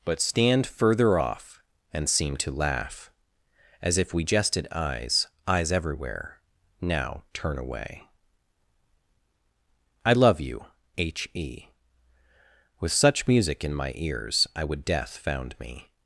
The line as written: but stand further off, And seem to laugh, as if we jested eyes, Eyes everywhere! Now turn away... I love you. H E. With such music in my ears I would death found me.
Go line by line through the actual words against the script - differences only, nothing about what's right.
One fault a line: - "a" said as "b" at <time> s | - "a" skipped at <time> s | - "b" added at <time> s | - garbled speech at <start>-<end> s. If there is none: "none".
none